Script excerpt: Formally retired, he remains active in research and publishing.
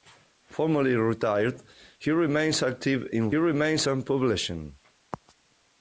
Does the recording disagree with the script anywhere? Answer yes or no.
yes